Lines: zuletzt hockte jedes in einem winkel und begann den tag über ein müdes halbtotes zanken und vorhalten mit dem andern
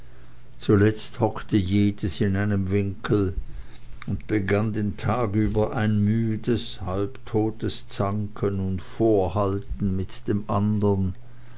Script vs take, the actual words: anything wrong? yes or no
no